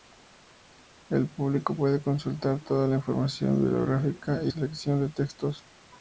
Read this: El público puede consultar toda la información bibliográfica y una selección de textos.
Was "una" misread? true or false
true